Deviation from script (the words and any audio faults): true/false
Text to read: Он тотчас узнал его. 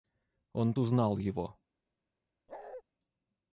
true